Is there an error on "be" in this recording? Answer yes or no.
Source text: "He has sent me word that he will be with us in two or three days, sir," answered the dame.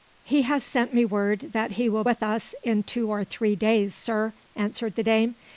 yes